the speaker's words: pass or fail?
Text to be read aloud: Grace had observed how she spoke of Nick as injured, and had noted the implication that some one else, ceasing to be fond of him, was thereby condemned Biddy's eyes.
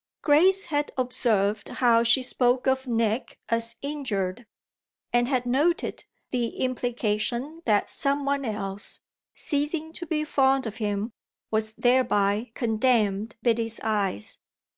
pass